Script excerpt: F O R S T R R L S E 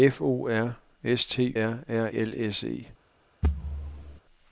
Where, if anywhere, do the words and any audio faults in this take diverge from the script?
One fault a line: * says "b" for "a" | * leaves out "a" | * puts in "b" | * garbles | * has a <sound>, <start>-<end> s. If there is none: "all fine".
* has a thud, 3.4-4.2 s